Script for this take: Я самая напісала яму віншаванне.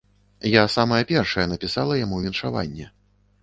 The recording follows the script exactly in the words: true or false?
false